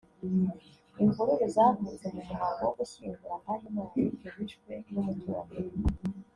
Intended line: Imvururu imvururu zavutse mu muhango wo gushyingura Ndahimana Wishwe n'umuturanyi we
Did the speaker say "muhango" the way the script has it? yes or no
yes